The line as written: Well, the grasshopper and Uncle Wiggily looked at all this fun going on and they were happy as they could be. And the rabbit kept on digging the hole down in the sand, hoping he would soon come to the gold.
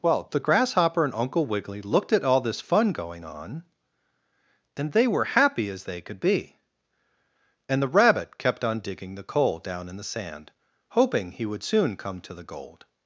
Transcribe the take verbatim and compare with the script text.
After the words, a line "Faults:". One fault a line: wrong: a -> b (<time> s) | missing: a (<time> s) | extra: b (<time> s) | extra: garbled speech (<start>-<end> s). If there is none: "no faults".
Well, the grasshopper and Uncle Wiggily looked at all this fun going on and they were happy as they could be. And the rabbit kept on digging the coal down in the sand, hoping he would soon come to the gold.
Faults:
wrong: hole -> coal (9.2 s)